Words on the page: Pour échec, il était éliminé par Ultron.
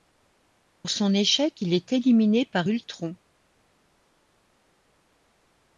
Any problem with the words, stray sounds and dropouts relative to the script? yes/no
yes